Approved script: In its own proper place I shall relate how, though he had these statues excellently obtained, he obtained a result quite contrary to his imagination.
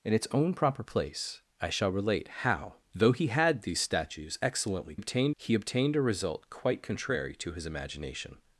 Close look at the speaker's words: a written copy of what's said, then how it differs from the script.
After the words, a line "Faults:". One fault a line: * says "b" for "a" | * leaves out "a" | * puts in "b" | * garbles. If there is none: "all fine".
In its own proper place I shall relate how, though he had these statues excellently obtained, he obtained a result quite contrary to his imagination.
Faults:
all fine